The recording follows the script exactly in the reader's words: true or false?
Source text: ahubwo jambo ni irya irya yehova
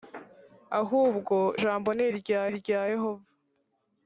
true